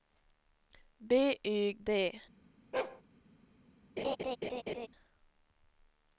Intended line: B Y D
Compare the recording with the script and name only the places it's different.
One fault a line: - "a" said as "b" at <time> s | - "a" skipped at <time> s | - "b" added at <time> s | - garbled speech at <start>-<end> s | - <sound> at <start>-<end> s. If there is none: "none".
- bark at 2.7-3.0 s
- laugh at 4.0-4.9 s